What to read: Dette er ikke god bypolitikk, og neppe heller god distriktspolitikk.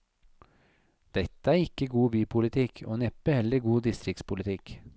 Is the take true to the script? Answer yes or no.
yes